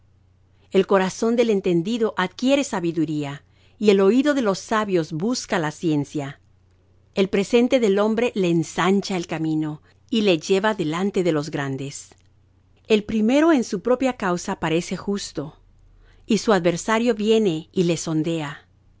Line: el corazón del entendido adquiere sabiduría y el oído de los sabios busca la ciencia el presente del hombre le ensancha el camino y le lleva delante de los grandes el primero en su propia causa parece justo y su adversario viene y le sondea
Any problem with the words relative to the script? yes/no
no